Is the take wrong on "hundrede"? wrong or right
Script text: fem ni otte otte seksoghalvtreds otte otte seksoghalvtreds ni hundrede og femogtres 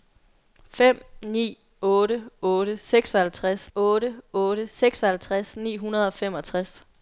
right